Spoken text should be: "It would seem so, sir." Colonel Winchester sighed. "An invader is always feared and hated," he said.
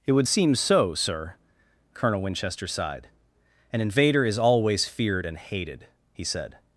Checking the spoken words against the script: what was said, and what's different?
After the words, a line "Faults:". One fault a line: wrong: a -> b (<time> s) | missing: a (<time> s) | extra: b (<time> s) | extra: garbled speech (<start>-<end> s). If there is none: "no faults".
"It would seem so, sir." Colonel Winchester sighed. "An invader is always feared and hated," he said.
Faults:
no faults